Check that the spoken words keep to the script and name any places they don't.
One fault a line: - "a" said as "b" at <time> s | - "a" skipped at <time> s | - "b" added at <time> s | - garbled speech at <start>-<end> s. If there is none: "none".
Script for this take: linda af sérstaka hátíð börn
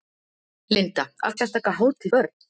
none